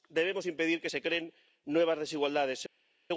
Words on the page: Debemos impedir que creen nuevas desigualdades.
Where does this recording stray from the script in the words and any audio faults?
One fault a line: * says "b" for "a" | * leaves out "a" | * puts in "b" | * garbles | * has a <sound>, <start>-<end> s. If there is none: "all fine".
* puts in "se"